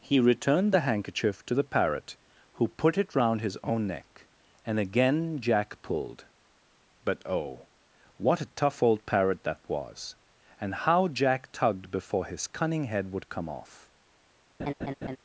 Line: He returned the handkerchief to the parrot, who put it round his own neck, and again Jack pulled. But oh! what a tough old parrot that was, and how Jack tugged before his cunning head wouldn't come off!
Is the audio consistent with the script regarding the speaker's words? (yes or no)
no